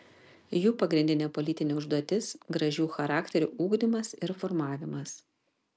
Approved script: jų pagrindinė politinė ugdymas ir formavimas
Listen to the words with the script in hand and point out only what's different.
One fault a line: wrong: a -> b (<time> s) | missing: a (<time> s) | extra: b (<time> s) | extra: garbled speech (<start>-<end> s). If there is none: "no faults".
extra: užduotis gražių charakterių (1.8 s)